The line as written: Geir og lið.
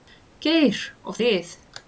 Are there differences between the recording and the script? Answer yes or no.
no